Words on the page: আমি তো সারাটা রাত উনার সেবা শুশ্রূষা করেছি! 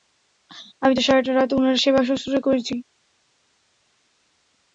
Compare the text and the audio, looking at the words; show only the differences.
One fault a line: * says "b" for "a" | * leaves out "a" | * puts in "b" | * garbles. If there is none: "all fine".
all fine